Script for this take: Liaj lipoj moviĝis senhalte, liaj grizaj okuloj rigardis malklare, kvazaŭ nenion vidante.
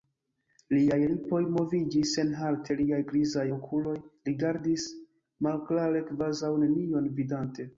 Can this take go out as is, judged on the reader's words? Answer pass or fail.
pass